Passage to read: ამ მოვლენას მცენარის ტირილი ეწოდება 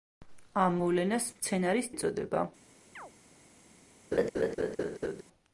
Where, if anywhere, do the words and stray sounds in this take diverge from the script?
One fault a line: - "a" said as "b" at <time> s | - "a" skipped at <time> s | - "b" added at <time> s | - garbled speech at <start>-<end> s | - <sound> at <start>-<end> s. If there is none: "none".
- "ტირილი" skipped at 1.9 s
- chirp at 3.0-3.1 s
- laugh at 4.1-5.2 s